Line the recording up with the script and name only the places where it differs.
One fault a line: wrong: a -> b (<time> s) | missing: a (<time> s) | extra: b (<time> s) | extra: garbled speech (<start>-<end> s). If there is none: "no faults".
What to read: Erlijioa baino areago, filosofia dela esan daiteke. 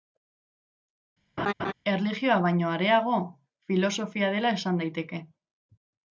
no faults